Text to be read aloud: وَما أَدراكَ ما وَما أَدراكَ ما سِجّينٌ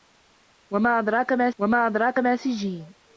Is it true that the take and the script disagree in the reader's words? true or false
false